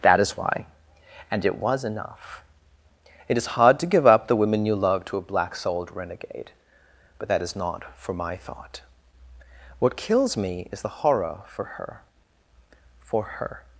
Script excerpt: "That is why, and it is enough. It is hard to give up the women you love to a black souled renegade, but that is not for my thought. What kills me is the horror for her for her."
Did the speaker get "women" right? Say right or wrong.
right